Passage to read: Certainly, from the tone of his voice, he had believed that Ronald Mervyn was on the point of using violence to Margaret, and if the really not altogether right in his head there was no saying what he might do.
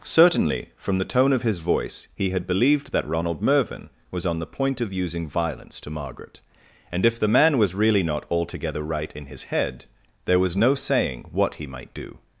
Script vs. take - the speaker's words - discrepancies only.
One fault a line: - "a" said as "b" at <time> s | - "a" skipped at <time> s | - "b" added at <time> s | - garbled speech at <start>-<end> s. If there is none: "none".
- "man was" added at 7.3 s